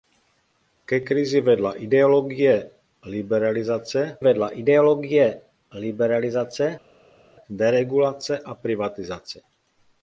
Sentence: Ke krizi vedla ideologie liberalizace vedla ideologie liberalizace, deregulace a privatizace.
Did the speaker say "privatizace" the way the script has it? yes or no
yes